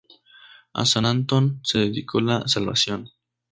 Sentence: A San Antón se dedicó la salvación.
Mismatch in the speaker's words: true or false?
false